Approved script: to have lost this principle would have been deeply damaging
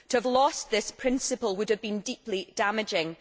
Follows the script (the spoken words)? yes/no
yes